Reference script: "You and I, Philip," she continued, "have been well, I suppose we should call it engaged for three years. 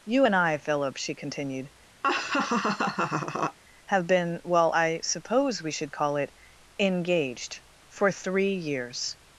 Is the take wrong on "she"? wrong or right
right